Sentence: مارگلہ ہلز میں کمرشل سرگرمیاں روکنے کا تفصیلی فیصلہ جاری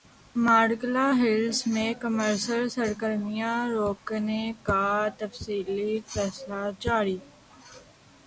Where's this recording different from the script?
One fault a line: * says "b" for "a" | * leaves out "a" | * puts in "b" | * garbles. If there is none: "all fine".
all fine